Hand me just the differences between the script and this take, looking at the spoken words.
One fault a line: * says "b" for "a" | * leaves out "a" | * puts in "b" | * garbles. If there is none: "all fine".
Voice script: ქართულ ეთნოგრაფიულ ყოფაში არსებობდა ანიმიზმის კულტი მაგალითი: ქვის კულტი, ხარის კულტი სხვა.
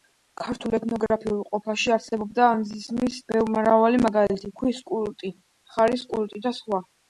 * says "მრავალი" for "კულტი"
* puts in "და"